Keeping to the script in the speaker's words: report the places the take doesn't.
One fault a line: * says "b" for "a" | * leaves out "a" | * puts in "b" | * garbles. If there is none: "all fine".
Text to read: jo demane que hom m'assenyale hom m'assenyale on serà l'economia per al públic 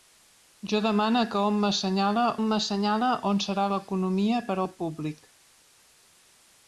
all fine